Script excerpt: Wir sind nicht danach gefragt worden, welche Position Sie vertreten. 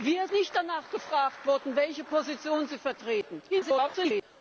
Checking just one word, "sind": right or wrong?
wrong